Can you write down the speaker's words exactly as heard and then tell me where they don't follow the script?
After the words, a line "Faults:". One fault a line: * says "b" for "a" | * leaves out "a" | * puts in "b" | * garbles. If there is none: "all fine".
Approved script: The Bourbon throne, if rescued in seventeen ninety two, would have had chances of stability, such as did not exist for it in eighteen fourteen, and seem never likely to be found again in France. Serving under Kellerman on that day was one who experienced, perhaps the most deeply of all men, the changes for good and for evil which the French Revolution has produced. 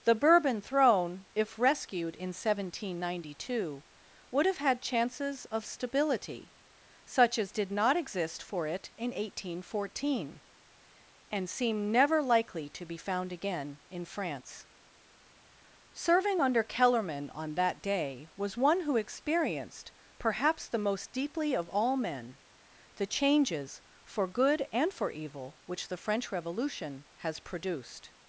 The Bourbon throne, if rescued in seventeen ninety two, would have had chances of stability, such as did not exist for it in eighteen fourteen, and seem never likely to be found again in France. Serving under Kellerman on that day was one who experienced, perhaps the most deeply of all men, the changes for good and for evil which the French Revolution has produced.
Faults:
all fine